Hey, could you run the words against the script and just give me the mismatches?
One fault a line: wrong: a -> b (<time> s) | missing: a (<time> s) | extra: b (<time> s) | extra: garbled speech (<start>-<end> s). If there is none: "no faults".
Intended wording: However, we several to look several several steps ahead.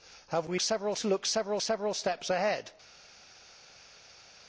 no faults